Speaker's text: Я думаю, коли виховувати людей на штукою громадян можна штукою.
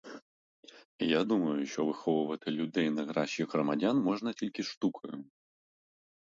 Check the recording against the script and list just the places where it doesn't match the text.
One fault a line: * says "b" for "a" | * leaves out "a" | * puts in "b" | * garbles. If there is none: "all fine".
* says "що" for "коли"
* says "кращих" for "штукою"
* puts in "тільки"